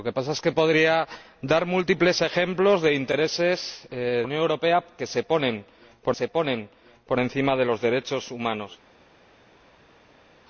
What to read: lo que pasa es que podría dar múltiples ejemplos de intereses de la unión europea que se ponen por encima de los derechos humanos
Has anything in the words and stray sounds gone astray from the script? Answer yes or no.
yes